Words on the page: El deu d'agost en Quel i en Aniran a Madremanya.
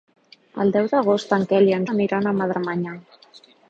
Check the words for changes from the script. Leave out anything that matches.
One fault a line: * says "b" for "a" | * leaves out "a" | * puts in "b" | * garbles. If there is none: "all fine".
all fine